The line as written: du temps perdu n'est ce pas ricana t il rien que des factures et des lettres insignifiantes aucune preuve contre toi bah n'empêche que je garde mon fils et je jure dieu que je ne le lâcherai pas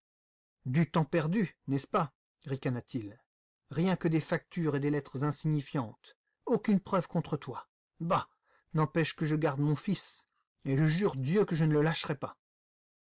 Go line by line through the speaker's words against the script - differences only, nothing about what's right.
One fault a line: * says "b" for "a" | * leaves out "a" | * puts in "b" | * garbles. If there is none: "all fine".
all fine